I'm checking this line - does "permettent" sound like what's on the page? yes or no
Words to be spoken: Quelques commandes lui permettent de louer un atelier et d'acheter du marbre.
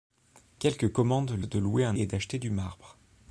no